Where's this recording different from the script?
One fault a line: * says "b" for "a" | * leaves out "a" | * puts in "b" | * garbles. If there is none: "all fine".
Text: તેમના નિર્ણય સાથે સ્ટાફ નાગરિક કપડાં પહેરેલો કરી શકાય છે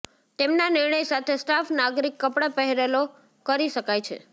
all fine